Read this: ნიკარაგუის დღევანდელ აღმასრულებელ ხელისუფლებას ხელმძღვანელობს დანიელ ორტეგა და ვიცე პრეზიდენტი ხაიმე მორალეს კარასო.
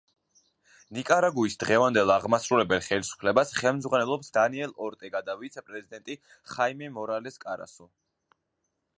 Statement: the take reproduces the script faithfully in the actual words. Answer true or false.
true